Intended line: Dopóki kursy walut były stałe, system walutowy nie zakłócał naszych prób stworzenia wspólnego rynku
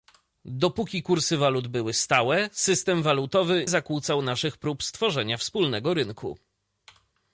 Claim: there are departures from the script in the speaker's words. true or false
true